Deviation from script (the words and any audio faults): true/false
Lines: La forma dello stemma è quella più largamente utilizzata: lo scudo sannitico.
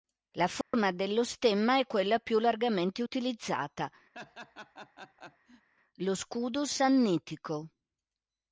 true